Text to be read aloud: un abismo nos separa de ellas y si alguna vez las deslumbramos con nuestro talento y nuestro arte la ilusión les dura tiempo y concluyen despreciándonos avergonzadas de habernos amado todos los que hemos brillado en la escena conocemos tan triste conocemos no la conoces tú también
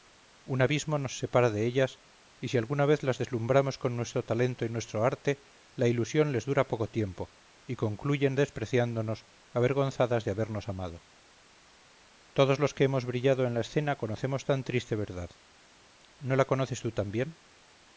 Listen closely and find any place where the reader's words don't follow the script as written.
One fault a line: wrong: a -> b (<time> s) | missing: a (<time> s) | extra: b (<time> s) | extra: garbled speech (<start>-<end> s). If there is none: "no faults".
extra: poco (6.7 s)
wrong: conocemos -> verdad (15.0 s)